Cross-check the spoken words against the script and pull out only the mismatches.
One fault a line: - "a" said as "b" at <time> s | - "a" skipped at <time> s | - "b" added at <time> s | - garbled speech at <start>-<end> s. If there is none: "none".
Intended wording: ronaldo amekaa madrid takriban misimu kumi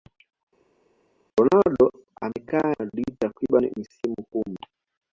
none